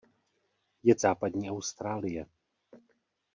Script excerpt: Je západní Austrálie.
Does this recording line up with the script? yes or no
yes